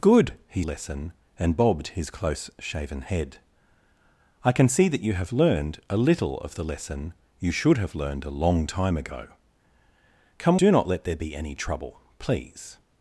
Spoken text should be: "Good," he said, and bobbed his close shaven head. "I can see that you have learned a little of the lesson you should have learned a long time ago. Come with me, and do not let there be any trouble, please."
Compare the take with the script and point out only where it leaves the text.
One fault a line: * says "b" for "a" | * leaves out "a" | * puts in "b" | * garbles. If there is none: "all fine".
* says "lesson" for "said"
* leaves out "with me and"